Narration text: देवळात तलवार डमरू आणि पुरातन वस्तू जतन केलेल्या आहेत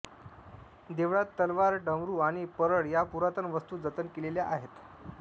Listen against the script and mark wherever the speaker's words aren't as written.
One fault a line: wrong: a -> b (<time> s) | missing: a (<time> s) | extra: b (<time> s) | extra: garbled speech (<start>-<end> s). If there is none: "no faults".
extra: परळ या (2.6 s)